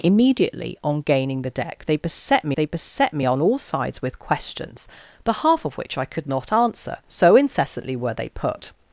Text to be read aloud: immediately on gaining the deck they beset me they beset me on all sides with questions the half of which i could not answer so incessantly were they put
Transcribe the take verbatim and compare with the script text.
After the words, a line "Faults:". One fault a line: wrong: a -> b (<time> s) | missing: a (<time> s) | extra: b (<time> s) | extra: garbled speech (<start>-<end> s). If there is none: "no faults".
immediately on gaining the deck they beset me they beset me on all sides with questions the half of which i could not answer so incessantly were they put
Faults:
no faults